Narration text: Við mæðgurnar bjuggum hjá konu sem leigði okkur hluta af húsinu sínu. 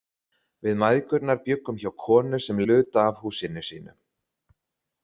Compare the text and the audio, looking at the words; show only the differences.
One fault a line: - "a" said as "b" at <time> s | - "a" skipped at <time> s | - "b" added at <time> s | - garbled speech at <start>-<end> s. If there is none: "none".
- "leigði okkur" skipped at 2.6 s